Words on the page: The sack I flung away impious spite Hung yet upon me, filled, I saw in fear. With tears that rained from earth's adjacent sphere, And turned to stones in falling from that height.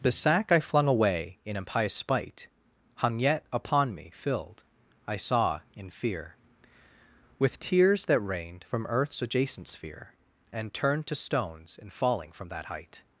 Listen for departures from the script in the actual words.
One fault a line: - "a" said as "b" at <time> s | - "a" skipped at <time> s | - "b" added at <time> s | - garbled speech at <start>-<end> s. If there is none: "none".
- "in" added at 1.4 s